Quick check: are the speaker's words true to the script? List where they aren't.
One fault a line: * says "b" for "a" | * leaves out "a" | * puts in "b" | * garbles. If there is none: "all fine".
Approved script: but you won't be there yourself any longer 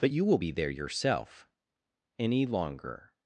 * says "will" for "won't"